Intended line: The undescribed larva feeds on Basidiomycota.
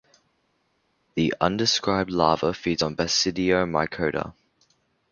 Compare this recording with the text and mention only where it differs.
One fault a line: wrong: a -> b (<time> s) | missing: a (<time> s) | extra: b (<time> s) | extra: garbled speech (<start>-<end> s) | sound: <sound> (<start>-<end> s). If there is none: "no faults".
no faults